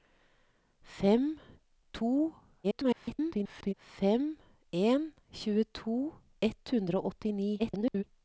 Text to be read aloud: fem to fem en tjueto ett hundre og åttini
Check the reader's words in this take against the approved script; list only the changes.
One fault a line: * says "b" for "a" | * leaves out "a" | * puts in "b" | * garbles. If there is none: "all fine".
* garbles
* garbles